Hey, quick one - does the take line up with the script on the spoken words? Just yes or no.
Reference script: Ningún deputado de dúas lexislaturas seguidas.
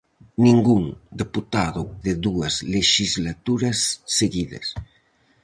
yes